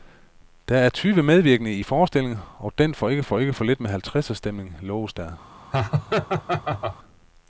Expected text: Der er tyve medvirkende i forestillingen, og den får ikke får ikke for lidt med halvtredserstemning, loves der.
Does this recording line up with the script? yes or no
yes